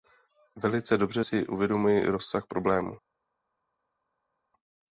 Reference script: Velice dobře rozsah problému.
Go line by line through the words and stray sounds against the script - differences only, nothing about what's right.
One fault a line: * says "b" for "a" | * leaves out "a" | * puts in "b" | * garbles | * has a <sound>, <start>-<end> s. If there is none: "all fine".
* puts in "si uvědomuji"